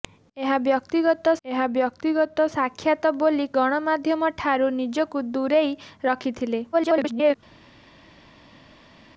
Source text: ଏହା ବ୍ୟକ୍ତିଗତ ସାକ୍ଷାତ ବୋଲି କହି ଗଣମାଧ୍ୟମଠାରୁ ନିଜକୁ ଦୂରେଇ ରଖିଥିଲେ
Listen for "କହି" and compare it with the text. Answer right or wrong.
wrong